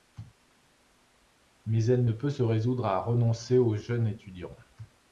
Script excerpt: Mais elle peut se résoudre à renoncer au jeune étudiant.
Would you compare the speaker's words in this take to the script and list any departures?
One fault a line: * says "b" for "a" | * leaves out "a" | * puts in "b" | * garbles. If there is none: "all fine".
* puts in "ne"